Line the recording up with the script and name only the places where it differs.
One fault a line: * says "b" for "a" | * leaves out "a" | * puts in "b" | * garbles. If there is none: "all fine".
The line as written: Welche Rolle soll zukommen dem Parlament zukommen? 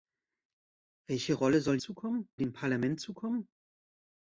all fine